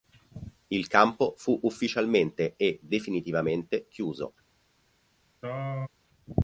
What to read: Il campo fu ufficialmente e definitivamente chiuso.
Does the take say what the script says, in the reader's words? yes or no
yes